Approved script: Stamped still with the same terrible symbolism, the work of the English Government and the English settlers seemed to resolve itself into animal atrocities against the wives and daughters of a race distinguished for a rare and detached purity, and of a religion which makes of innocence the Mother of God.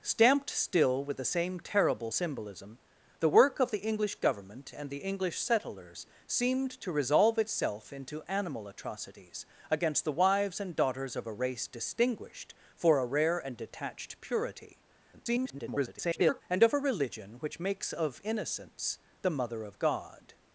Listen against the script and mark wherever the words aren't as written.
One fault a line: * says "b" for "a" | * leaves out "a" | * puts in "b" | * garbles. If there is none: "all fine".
* garbles